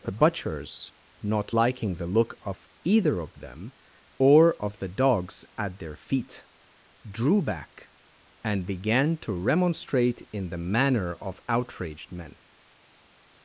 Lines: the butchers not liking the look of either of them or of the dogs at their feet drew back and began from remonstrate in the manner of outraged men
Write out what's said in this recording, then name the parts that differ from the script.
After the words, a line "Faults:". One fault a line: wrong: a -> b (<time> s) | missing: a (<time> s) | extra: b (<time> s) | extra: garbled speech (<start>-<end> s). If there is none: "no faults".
the butchers not liking the look of either of them or of the dogs at their feet drew back and began to remonstrate in the manner of outraged men
Faults:
wrong: from -> to (9.2 s)